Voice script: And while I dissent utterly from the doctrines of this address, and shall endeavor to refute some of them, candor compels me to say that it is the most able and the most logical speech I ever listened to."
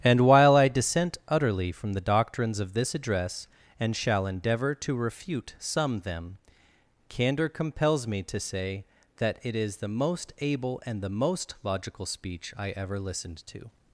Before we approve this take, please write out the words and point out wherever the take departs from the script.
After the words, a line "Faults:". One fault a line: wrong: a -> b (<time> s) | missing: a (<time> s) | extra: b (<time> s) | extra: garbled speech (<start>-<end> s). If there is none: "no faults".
And while I dissent utterly from the doctrines of this address, and shall endeavor to refute some them, candor compels me to say that it is the most able and the most logical speech I ever listened to."
Faults:
missing: of (6.0 s)